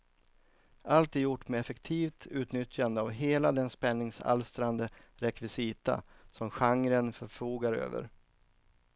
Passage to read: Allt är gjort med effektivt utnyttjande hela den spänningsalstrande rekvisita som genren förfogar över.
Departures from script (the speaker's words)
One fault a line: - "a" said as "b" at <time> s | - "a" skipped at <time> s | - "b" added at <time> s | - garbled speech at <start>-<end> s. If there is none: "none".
- "av" added at 3.0 s